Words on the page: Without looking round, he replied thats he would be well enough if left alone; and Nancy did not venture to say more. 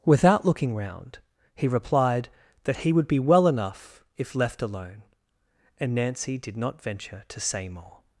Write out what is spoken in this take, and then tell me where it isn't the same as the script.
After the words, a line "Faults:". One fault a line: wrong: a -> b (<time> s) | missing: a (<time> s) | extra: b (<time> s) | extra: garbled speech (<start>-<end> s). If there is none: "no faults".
Without looking round, he replied that he would be well enough if left alone; and Nancy did not venture to say more.
Faults:
wrong: thats -> that (2.6 s)